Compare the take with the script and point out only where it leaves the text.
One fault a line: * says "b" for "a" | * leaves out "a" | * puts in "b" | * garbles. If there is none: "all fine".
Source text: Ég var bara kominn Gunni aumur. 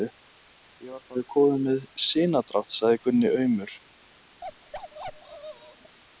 * puts in "með sinadrátt sagði"